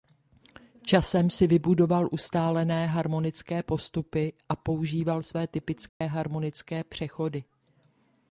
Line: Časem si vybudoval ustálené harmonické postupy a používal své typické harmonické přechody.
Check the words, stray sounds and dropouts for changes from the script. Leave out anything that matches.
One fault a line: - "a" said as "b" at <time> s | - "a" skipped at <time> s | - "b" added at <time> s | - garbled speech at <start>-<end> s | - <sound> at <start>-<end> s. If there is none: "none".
- dropout at 5.9-6.0 s